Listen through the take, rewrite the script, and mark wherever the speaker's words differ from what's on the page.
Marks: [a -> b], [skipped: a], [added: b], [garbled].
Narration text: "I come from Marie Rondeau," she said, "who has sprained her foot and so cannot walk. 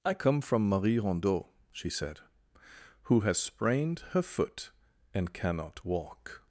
"I come from Marie Rondeau," she said, "who has sprained her foot and [skipped: so] cannot walk.